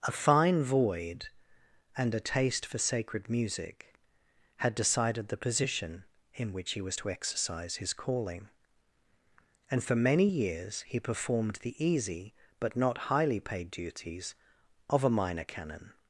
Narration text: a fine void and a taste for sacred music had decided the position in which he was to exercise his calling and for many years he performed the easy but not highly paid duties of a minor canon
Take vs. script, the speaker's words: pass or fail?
pass